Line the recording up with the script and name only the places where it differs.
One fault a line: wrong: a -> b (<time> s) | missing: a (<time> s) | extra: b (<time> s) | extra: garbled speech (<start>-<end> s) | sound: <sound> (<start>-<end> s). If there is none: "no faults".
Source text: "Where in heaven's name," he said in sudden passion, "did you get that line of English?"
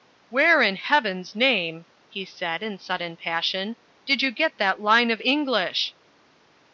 no faults